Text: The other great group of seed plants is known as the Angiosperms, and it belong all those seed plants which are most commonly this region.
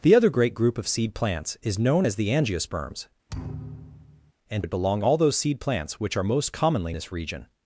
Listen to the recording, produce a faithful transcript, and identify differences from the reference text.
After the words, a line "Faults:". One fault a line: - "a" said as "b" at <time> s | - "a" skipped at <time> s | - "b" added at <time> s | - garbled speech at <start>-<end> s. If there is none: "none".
The other great group of seed plants is known as the Angiosperms, and it belong all those seed plants which are most commonly this region.
Faults:
none